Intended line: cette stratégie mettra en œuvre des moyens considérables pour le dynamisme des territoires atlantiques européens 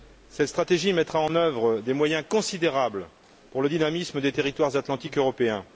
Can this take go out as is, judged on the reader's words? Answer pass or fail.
pass